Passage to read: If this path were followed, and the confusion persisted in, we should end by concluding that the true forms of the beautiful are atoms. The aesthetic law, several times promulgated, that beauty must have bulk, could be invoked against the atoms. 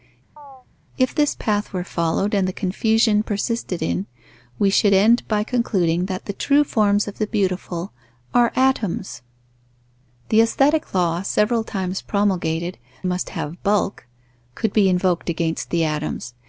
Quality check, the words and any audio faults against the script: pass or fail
fail